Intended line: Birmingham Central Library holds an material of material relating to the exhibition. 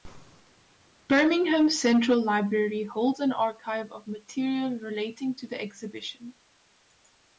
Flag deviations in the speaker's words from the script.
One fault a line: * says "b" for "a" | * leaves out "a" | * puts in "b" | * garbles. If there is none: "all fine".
* says "archive" for "material"